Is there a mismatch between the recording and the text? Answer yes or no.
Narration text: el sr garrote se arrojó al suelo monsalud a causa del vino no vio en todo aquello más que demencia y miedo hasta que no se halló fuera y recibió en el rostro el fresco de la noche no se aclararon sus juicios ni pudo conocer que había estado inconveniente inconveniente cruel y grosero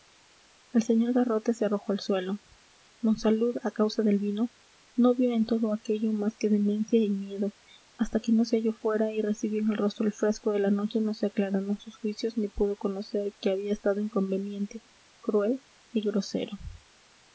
yes